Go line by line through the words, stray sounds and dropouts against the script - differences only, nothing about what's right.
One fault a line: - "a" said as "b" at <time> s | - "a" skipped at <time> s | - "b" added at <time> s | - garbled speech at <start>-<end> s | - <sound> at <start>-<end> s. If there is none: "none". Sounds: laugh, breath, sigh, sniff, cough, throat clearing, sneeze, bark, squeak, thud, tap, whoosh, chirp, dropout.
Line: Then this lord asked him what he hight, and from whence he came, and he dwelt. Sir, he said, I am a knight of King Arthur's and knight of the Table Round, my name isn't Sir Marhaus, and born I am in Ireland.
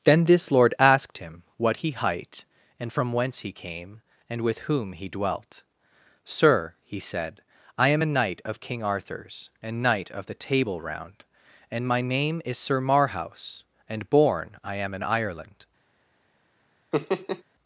- "with whom" added at 4.4 s
- "and" added at 11.7 s
- "isn't" said as "is" at 12.4 s
- laugh at 16.9-17.4 s